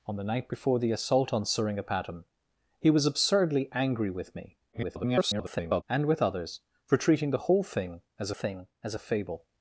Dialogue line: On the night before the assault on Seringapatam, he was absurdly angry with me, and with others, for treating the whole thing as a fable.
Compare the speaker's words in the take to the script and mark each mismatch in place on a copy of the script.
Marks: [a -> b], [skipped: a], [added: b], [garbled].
On the night before the assault on Seringapatam, he was absurdly angry with me, [garbled] and with others, for treating the whole thing as [added: thing as] a fable.